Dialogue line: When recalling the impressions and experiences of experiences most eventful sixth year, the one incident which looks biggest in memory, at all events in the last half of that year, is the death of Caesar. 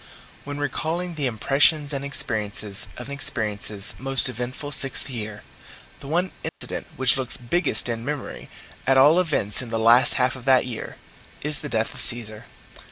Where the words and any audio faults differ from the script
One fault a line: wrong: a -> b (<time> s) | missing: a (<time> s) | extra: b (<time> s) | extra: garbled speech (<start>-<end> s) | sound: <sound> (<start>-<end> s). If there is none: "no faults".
sound: dropout (6.5-6.6 s)